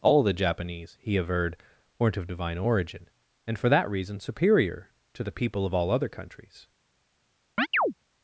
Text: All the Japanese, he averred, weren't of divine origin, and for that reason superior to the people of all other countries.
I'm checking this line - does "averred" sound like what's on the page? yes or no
yes